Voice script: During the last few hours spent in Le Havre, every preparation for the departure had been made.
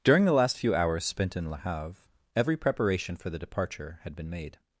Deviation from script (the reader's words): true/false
false